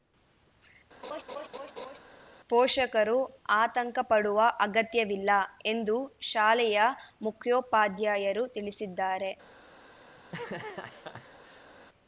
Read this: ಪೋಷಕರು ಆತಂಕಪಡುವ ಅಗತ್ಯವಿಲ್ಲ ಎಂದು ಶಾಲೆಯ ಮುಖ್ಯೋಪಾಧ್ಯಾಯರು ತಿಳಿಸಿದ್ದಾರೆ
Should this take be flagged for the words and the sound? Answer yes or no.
yes